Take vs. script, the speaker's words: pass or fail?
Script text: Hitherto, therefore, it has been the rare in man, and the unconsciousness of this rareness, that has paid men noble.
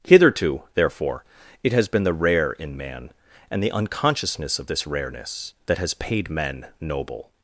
pass